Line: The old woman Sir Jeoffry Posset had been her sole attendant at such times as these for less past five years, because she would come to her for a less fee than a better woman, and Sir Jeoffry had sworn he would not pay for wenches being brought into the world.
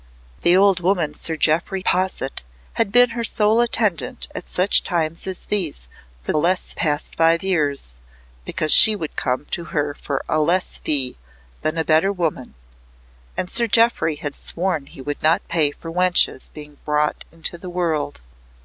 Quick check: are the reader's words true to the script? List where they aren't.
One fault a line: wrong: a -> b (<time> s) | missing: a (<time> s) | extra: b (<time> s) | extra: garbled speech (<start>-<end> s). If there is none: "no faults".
no faults